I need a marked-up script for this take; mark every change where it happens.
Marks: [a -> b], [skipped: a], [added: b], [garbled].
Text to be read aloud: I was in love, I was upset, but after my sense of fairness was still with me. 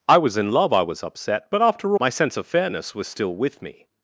I was in love, I was upset, but after my sense of fairness was still with me.